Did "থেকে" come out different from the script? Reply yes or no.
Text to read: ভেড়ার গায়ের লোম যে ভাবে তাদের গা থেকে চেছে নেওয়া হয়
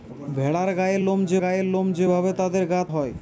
yes